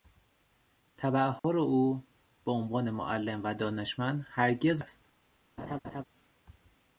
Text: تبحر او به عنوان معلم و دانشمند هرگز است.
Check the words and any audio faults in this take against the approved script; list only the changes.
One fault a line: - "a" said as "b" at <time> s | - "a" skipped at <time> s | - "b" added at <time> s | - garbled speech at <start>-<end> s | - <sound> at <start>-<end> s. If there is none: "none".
- dropout at 1.4-1.4 s
- laugh at 5.6-6.0 s